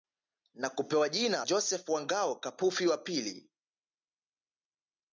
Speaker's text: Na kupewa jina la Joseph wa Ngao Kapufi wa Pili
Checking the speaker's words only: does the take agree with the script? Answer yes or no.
no